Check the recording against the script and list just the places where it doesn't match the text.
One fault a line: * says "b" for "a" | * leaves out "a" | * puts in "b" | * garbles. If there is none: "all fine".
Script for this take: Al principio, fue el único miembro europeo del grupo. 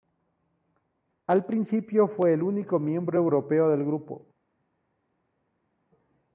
all fine